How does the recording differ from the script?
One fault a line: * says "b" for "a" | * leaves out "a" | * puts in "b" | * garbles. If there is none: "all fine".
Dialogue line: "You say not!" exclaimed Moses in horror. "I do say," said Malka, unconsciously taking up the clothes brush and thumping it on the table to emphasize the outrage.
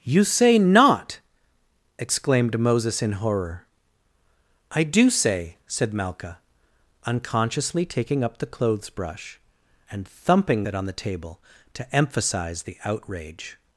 all fine